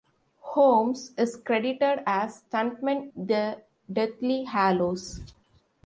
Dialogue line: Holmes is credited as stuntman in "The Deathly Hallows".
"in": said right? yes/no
no